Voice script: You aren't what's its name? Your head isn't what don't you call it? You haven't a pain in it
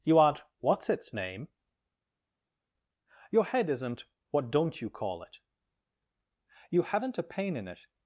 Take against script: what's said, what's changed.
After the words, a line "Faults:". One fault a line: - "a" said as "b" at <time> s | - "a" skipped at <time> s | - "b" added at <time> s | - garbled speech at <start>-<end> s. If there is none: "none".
You aren't what's its name? Your head isn't what don't you call it? You haven't a pain in it
Faults:
none